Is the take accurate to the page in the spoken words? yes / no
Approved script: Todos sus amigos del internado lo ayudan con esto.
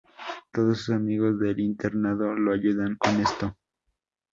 yes